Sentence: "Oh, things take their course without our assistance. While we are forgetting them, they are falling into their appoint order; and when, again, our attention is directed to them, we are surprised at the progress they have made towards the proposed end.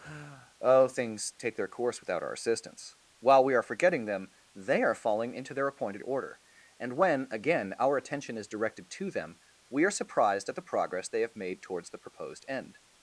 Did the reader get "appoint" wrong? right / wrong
wrong